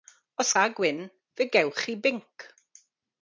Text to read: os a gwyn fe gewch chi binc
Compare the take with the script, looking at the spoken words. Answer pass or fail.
pass